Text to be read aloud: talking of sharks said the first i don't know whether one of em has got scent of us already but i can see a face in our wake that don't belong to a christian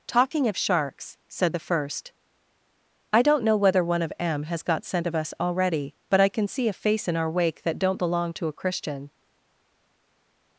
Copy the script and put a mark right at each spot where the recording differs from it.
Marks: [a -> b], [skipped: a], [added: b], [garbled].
talking of sharks said the first i don't know whether one of em has got scent of us already but i can see a face in our wake that don't belong to a christian